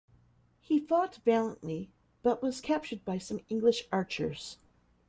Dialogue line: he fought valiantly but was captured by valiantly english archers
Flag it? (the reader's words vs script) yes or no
yes